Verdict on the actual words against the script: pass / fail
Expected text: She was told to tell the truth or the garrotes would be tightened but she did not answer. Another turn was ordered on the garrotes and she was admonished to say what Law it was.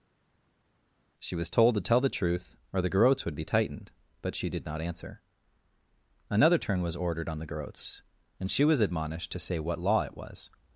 pass